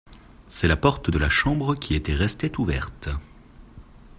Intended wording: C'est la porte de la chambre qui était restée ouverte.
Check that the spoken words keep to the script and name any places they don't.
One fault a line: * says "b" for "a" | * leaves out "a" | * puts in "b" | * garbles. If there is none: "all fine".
all fine